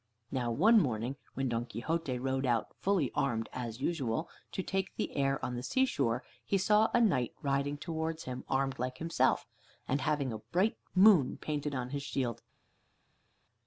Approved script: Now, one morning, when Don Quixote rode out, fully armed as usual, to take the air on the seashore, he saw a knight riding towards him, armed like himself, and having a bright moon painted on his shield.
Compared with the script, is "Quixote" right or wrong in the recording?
right